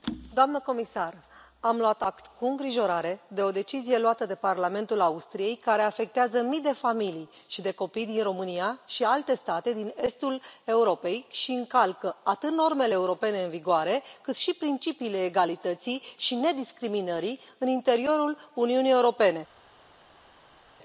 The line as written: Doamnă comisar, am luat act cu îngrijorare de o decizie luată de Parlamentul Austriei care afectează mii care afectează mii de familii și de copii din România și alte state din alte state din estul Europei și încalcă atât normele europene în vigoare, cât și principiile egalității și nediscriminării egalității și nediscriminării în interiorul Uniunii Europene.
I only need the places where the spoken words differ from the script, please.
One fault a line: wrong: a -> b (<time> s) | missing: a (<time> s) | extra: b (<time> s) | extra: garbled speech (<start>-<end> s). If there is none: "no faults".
missing: care afectează mii (6.6 s)
missing: alte state din (9.9 s)
missing: egalității și nediscriminării (17.4 s)